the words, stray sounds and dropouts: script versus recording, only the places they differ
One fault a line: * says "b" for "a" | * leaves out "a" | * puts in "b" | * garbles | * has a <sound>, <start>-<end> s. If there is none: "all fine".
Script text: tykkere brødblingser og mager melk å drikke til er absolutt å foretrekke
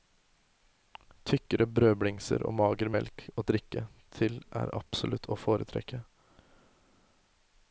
all fine